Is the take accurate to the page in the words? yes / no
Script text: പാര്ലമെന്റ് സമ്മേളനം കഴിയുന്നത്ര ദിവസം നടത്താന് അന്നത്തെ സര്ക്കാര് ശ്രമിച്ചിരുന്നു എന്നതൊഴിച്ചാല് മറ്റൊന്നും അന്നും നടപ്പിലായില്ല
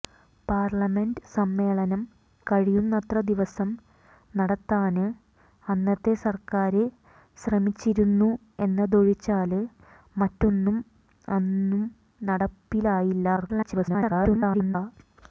no